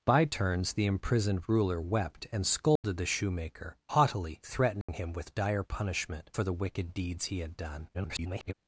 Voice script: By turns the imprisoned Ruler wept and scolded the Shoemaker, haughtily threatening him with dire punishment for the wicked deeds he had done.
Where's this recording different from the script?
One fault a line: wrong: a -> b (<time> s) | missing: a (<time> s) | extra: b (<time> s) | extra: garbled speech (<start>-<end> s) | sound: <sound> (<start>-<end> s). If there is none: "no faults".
sound: dropout (2.8-2.8 s)
sound: dropout (4.8-4.9 s)
extra: garbled speech (7.9-8.5 s)